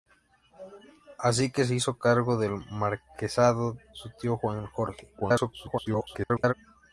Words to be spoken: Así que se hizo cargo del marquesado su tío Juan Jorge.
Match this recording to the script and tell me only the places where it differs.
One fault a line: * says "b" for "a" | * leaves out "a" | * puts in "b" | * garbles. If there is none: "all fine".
* garbles